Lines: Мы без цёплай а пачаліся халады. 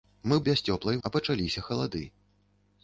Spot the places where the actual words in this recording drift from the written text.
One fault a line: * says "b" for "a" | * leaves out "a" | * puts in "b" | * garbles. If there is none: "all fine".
all fine